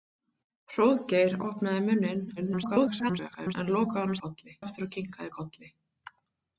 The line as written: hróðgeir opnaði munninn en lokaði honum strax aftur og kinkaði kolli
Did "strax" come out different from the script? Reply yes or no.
yes